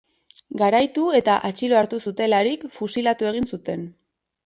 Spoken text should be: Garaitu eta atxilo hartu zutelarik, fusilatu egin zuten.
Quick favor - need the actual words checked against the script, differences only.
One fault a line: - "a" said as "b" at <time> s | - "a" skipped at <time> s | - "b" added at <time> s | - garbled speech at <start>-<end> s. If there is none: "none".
none